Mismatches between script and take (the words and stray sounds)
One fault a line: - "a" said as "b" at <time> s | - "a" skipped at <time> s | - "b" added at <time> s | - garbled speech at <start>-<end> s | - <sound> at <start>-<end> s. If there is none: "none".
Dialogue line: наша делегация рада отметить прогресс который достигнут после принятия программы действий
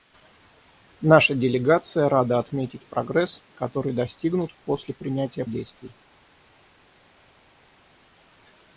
- "программы" skipped at 5.4 s